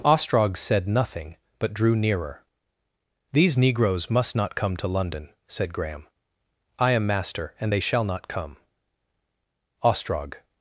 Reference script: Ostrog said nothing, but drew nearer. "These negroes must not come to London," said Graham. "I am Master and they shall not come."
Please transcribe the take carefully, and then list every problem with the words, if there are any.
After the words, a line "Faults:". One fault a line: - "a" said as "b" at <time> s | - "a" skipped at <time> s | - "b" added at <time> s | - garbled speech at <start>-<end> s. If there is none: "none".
Ostrog said nothing, but drew nearer. "These negroes must not come to London," said Graham. "I am Master and they shall not come." Ostrog
Faults:
- "Ostrog" added at 9.8 s